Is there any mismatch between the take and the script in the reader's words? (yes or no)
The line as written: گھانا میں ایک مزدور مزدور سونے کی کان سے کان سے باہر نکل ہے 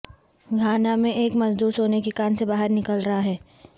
yes